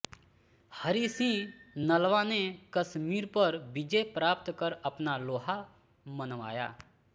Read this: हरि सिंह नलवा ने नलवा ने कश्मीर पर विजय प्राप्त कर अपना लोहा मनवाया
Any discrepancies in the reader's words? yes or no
yes